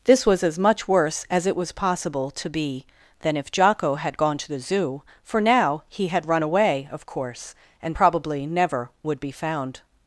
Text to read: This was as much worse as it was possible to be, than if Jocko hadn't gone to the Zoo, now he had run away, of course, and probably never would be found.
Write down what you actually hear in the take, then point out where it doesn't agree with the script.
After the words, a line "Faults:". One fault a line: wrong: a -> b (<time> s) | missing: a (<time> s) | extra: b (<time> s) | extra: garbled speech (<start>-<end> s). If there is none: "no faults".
This was as much worse as it was possible to be, than if Jocko had gone to the Zoo, for now he had run away, of course, and probably never would be found.
Faults:
wrong: hadn't -> had (4.0 s)
extra: for (5.2 s)